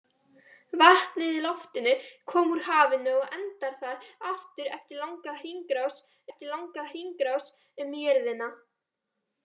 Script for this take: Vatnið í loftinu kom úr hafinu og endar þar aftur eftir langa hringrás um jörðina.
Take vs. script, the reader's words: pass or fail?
fail